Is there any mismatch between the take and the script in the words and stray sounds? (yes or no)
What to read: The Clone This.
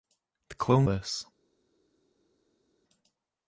no